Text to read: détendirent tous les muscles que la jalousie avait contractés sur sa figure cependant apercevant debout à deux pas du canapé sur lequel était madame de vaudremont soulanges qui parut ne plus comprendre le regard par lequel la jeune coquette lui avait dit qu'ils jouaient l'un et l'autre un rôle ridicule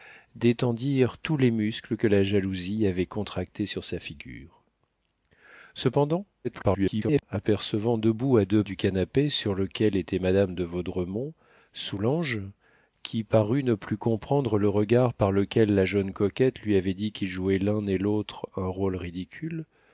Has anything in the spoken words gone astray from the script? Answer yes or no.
yes